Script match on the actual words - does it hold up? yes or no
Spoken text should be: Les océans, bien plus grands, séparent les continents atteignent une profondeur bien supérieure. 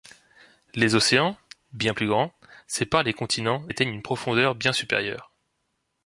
yes